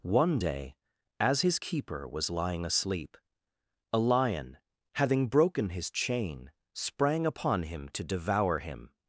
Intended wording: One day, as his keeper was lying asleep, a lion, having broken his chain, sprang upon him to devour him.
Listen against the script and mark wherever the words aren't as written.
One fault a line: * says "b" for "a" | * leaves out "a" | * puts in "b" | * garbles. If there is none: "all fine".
all fine